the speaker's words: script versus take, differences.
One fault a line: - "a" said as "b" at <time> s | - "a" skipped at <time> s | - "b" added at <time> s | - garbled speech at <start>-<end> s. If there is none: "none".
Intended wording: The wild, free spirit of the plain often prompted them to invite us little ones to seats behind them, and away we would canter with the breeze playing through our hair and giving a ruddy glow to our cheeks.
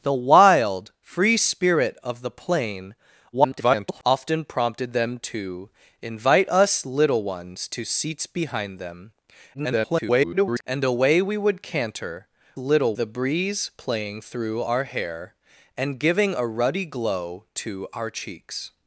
- garbled speech at 3.3-4.0 s
- garbled speech at 9.5-10.6 s
- "with" said as "little" at 12.6 s